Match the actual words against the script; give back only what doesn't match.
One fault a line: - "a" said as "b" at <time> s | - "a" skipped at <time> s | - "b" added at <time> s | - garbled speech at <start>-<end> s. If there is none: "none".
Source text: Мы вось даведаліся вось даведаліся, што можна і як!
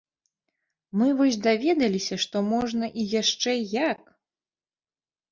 - "вось даведаліся" skipped at 2.1 s
- "яшчэ" added at 3.2 s